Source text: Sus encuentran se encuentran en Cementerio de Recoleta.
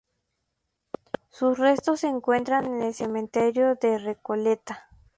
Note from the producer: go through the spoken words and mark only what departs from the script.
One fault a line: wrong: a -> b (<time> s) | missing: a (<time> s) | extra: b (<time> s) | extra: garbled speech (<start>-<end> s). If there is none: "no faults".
wrong: encuentran -> restos (1.6 s)
extra: el (2.8 s)